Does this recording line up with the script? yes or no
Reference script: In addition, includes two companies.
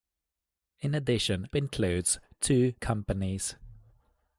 yes